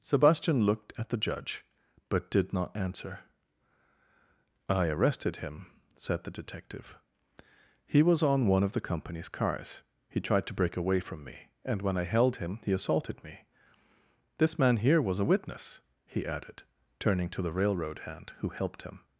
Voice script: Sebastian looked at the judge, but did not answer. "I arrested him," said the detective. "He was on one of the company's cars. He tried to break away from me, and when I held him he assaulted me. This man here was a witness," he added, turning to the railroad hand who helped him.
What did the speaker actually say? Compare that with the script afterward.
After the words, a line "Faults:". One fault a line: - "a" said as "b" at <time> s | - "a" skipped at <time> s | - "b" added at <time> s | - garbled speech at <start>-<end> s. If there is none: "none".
Sebastian looked at the judge, but did not answer. "I arrested him," said the detective. "He was on one of the company's cars. He tried to break away from me, and when I held him he assaulted me. This man here was a witness," he added, turning to the railroad hand who helped him.
Faults:
none